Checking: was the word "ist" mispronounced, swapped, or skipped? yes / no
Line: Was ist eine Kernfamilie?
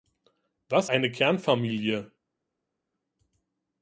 yes